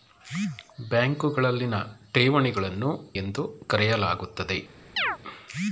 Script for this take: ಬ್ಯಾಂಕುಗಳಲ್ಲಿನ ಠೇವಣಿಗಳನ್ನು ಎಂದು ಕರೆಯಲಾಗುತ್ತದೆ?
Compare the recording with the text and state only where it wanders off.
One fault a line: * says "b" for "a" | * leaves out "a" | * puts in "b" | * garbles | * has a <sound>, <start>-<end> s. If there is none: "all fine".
* has a chirp, 5.0-5.2 s